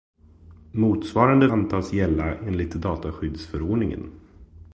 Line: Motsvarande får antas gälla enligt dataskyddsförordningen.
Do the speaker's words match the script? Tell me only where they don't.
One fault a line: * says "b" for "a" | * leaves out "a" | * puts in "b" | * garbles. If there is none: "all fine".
* leaves out "får"